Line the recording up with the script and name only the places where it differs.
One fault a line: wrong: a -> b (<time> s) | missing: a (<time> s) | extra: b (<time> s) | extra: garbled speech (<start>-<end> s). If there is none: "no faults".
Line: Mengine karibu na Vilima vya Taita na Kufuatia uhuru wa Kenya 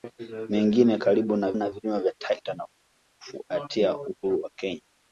extra: na (1.5 s)